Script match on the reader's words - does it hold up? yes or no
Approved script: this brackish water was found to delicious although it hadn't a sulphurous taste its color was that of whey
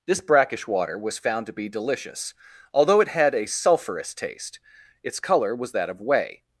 no